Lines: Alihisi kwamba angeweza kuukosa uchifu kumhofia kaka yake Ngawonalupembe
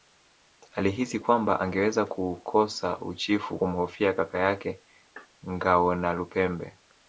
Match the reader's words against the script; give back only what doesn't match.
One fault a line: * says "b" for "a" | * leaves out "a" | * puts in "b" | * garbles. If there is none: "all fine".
all fine